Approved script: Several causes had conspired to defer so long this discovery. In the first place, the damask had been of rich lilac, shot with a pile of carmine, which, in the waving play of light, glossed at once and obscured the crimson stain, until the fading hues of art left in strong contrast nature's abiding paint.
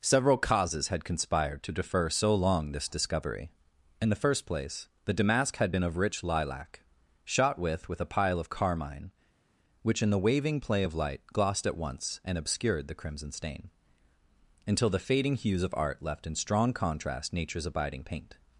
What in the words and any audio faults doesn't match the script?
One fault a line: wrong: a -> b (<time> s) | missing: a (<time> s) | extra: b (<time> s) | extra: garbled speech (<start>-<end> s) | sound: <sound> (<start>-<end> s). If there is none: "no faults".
extra: with (7.9 s)